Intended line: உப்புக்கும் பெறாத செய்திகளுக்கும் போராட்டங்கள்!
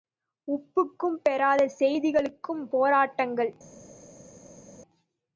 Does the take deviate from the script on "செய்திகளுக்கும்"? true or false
false